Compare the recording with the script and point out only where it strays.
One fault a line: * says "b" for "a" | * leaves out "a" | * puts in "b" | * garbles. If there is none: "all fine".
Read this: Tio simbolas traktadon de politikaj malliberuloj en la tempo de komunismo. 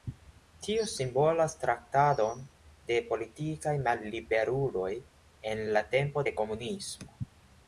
all fine